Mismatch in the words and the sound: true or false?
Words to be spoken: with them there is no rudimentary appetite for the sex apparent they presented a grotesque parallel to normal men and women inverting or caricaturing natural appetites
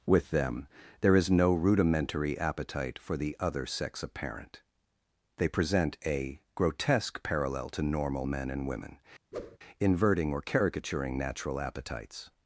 true